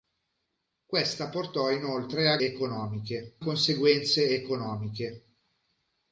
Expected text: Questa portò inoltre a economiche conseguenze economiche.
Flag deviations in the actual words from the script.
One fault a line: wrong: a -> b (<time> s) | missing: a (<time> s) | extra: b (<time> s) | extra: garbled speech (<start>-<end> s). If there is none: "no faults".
no faults